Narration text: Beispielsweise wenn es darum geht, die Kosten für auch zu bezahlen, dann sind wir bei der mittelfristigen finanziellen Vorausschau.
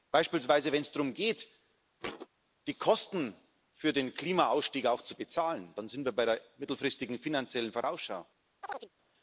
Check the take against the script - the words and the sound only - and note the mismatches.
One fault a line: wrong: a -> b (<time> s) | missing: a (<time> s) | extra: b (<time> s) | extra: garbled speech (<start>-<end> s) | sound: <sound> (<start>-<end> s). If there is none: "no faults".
sound: thud (2.0-2.3 s)
extra: den Klimaausstieg (3.9 s)
sound: chirp (8.6-8.9 s)